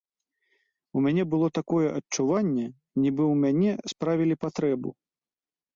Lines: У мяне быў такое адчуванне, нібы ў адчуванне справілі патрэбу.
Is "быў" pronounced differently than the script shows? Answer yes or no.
yes